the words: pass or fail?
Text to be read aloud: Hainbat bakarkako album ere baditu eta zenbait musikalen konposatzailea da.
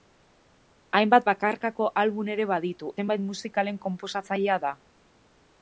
fail